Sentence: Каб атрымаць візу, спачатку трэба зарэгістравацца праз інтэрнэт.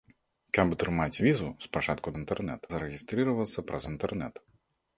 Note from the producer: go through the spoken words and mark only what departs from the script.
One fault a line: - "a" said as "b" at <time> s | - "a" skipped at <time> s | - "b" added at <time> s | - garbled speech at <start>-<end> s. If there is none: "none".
- "трэба" said as "інтэрнэт" at 2.2 s